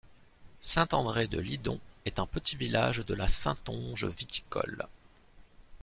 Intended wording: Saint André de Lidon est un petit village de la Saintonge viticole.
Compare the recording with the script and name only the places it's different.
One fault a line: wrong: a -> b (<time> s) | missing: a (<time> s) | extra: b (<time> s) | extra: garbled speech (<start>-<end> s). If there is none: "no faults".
no faults